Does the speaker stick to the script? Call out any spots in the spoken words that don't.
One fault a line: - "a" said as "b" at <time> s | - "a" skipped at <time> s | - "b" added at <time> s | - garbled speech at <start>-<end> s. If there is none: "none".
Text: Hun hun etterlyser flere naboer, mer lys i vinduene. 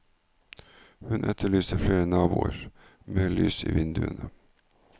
- "hun" skipped at 1.2 s